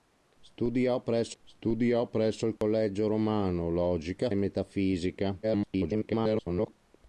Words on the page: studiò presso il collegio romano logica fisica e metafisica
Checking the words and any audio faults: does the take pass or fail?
fail